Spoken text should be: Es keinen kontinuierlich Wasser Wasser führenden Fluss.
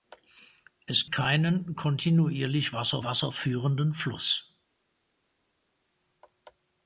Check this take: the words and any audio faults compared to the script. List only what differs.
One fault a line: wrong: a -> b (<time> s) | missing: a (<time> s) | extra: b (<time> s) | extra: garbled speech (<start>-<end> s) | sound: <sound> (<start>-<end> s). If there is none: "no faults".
no faults